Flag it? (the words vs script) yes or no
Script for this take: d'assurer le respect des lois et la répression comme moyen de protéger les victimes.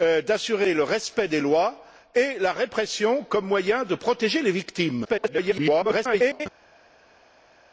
yes